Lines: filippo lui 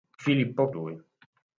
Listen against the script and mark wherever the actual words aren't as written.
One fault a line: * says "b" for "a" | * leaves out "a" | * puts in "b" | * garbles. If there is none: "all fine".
all fine